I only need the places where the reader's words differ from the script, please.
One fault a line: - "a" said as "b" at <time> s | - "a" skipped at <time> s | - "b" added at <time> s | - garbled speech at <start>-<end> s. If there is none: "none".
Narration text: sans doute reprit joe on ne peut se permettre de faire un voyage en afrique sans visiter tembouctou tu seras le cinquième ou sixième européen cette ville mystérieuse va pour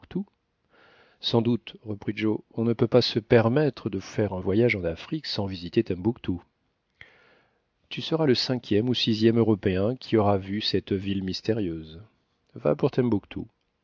- "pas" added at 2.9 s
- "qui aura vu" added at 9.9 s